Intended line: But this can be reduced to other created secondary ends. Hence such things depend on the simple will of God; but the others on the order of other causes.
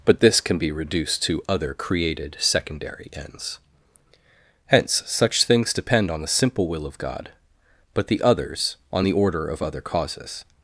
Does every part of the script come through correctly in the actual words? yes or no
yes